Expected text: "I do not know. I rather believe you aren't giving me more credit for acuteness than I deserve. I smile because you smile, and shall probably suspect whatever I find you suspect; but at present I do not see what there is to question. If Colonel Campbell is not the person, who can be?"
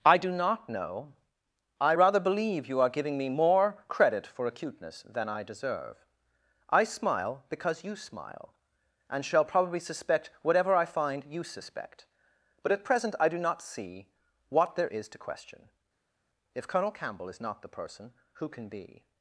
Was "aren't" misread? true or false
true